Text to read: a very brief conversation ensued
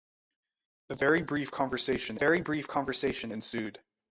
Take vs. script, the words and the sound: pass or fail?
fail